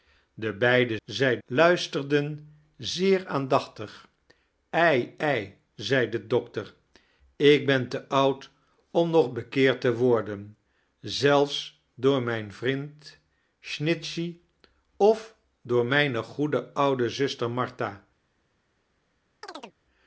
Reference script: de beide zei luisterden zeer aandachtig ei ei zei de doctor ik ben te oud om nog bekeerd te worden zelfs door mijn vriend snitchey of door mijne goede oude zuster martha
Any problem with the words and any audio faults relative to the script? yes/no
yes